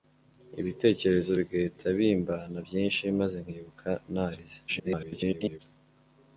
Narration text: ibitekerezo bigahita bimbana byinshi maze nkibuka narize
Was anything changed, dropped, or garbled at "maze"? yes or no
no